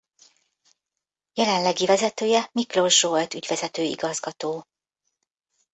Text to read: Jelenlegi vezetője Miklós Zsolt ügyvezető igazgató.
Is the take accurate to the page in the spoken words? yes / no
yes